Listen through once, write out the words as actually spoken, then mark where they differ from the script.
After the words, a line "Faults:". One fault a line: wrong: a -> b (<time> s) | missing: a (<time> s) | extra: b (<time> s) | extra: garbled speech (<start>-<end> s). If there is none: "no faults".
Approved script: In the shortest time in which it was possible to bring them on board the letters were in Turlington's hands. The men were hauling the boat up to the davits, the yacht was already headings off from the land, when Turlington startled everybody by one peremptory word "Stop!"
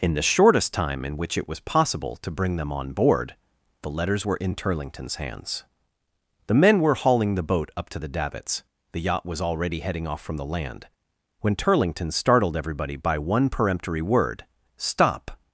In the shortest time in which it was possible to bring them on board the letters were in Turlington's hands. The men were hauling the boat up to the davits, the yacht was already heading off from the land, when Turlington startled everybody by one peremptory word "Stop!"
Faults:
wrong: headings -> heading (9.8 s)